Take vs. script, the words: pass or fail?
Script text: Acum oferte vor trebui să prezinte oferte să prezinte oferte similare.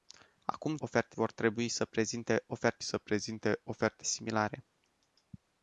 pass